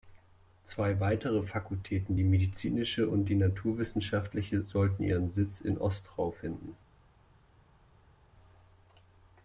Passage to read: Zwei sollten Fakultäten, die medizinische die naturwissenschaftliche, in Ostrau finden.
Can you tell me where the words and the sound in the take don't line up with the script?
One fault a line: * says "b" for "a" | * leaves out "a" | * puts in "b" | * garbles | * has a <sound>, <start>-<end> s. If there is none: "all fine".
* says "weitere" for "sollten"
* puts in "und"
* puts in "sollten ihren Sitz"